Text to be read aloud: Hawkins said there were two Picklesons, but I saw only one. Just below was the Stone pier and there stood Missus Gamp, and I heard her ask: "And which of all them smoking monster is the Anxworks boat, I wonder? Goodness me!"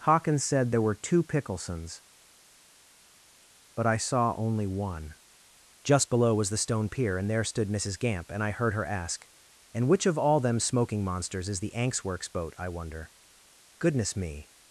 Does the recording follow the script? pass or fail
fail